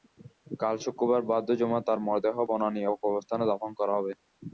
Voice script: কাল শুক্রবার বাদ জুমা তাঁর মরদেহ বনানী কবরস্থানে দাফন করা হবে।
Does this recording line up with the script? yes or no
yes